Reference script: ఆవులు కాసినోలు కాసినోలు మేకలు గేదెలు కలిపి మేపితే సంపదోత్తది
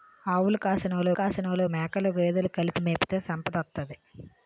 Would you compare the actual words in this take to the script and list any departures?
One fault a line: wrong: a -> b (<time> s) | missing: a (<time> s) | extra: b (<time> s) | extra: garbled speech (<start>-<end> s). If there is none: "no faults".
no faults